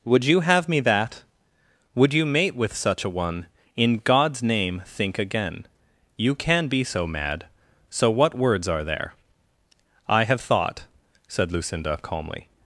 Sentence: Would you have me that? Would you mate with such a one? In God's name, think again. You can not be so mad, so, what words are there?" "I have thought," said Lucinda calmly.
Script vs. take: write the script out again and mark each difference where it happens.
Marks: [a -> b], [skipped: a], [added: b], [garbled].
Would you have me that? Would you mate with such a one? In God's name, think again. You can [skipped: not] be so mad, so, what words are there?" "I have thought," said Lucinda calmly.